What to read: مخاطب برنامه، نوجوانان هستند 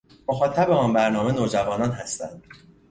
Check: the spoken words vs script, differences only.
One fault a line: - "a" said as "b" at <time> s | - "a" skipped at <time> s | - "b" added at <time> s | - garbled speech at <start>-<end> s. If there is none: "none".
- "آن" added at 0.7 s